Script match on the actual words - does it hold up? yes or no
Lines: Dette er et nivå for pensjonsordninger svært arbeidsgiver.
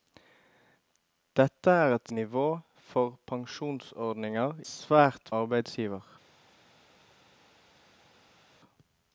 yes